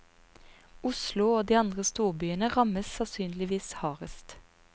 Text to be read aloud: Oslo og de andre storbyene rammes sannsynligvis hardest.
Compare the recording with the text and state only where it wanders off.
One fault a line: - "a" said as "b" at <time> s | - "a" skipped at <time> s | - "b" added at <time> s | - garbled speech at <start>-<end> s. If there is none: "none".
none